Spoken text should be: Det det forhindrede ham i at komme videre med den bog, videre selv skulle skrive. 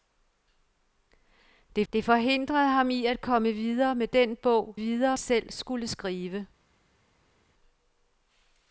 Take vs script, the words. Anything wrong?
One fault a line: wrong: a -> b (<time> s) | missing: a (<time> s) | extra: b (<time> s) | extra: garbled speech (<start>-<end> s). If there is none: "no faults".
no faults